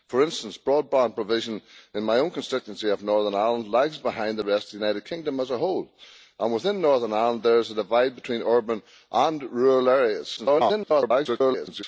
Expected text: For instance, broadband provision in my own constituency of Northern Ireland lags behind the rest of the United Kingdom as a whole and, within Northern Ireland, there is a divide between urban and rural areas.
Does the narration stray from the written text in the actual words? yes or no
yes